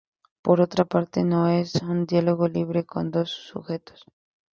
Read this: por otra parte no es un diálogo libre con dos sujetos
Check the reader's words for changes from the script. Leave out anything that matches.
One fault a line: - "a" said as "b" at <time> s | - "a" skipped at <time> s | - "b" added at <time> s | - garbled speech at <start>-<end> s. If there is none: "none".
none